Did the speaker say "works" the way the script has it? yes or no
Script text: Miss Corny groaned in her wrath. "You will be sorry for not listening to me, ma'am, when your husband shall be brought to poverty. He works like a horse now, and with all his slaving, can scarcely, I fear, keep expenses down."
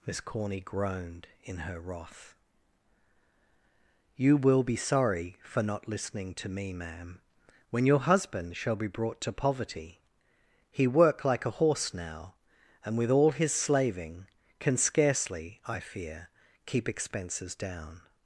no